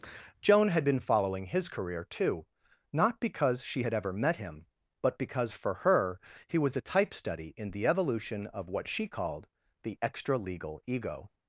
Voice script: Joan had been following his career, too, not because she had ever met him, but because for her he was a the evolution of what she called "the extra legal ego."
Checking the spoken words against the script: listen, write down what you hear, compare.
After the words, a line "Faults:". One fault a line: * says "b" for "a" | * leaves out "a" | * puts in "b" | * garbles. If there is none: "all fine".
Joan had been following his career, too, not because she had ever met him, but because for her he was a type study in the evolution of what she called "the extra legal ego."
Faults:
* puts in "type study in"